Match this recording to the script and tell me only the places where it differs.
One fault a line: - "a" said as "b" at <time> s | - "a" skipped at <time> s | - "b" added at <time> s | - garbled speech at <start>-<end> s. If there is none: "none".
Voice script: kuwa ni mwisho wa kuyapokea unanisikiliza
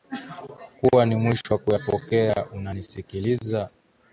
none